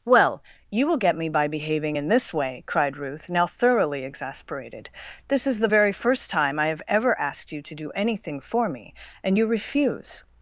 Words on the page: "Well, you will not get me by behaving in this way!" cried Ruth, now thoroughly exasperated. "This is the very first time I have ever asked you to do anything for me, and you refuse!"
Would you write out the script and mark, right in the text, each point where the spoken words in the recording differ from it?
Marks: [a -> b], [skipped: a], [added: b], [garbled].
"Well, you will [skipped: not] get me by behaving in this way!" cried Ruth, now thoroughly exasperated. "This is the very first time I have ever asked you to do anything for me, and you refuse!"